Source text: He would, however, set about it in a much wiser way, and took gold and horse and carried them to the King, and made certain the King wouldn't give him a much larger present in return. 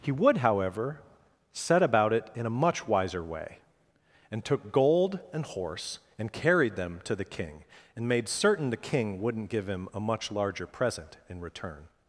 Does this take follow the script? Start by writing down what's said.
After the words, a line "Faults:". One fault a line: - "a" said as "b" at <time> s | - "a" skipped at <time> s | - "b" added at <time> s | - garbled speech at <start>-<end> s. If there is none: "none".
He would, however, set about it in a much wiser way, and took gold and horse and carried them to the King, and made certain the King wouldn't give him a much larger present in return.
Faults:
none